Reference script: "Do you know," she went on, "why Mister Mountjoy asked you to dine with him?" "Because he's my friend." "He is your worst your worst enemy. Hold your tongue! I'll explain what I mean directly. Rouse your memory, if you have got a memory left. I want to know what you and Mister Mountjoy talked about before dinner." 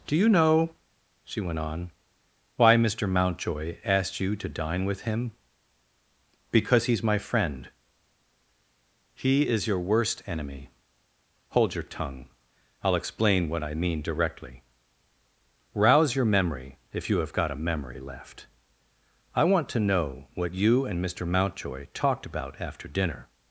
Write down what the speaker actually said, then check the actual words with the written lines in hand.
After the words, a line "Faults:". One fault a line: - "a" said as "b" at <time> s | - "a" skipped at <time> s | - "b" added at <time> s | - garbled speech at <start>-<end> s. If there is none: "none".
"Do you know," she went on, "why Mister Mountjoy asked you to dine with him?" "Because he's my friend." "He is your worst enemy. Hold your tongue! I'll explain what I mean directly. Rouse your memory, if you have got a memory left. I want to know what you and Mister Mountjoy talked about after dinner."
Faults:
- "your worst" skipped at 10.2 s
- "before" said as "after" at 22.6 s